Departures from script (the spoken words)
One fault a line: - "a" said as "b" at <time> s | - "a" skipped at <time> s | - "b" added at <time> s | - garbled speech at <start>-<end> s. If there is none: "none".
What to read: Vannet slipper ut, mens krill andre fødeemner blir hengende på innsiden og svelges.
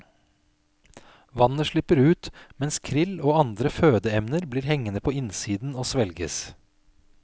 - "og" added at 3.2 s